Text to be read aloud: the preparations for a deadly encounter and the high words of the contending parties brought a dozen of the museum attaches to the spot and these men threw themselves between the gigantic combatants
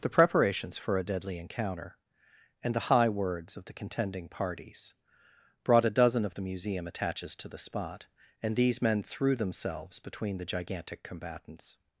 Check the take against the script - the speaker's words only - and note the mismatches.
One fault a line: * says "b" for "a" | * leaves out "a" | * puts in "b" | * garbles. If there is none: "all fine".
all fine